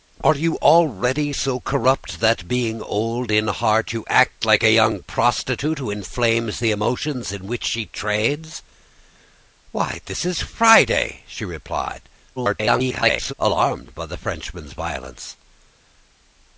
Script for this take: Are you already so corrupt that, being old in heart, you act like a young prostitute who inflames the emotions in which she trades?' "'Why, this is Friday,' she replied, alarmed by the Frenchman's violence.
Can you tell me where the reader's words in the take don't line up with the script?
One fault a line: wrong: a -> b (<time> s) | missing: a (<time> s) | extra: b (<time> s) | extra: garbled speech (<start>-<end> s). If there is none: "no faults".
extra: garbled speech (12.4-13.3 s)